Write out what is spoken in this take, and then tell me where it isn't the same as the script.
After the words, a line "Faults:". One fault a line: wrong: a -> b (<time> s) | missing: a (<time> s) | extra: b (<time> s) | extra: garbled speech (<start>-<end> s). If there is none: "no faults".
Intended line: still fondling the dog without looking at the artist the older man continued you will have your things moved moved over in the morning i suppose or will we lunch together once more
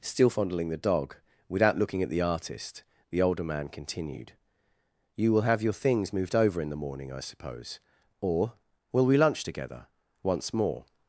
still fondling the dog without looking at the artist the older man continued you will have your things moved over in the morning i suppose or will we lunch together once more
Faults:
missing: moved (6.4 s)